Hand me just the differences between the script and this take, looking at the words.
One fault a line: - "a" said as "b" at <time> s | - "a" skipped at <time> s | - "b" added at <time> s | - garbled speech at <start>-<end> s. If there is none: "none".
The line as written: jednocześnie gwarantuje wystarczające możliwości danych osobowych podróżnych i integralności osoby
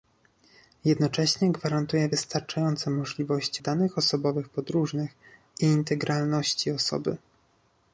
none